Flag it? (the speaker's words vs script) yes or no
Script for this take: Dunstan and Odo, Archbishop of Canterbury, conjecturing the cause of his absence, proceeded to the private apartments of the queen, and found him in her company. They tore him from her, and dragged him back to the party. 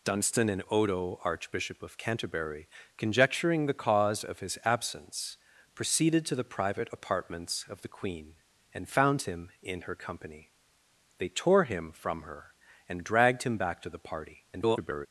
yes